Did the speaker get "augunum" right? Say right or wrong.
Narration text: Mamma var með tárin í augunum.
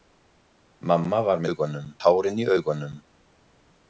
right